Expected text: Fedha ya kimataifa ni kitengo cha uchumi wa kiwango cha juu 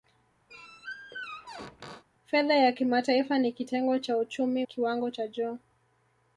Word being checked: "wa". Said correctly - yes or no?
no